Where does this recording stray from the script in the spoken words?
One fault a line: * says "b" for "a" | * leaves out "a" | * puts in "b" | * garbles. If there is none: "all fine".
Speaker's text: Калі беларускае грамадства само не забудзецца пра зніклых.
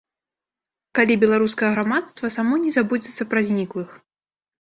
all fine